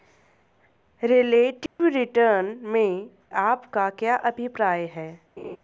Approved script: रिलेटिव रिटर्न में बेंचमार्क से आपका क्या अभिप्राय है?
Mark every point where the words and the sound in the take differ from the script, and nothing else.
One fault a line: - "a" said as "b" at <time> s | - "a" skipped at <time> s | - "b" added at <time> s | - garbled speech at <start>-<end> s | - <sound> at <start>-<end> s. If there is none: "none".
- dropout at 1.7-1.8 s
- "बेंचमार्क से" skipped at 3.1 s
- laugh at 5.4-5.6 s